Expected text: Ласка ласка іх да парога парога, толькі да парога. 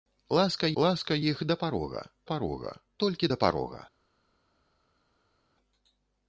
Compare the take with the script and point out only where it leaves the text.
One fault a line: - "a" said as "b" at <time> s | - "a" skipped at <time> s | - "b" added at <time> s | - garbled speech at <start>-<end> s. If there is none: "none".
none